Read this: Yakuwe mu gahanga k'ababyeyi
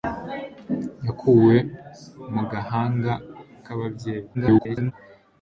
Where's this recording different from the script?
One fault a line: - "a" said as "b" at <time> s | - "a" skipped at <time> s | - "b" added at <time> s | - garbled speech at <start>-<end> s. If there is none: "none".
- garbled speech at 4.3-4.9 s